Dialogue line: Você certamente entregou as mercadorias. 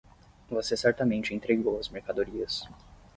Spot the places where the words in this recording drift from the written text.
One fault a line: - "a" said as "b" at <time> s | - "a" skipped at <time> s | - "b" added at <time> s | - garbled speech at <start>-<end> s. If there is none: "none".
none